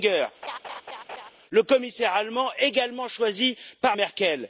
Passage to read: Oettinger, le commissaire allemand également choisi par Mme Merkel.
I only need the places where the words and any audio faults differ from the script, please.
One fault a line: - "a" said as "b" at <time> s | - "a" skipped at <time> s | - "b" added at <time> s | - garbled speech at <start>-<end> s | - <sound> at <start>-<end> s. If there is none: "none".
- laugh at 0.4-1.3 s
- "Mme" skipped at 4.0 s